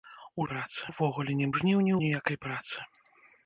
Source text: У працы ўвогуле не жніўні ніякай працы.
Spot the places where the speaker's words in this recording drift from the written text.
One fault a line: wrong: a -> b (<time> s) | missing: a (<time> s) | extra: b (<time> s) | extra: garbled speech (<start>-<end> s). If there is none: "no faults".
no faults